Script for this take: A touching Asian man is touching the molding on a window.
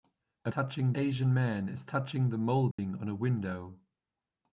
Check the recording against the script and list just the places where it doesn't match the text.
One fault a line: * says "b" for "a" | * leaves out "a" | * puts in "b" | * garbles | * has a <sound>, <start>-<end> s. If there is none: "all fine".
* has a dropout, 2.7-2.8 s